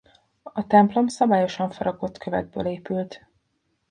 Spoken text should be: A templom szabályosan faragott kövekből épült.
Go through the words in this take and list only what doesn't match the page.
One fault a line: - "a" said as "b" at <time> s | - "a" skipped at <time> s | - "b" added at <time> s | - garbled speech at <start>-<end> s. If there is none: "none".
none